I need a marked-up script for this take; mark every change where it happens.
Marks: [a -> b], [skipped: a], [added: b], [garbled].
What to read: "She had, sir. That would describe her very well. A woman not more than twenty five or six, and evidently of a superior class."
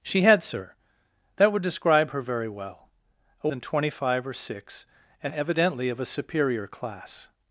"She had, sir. That would describe her very well. A [skipped: woman not more] than twenty five or six, and evidently of a superior class."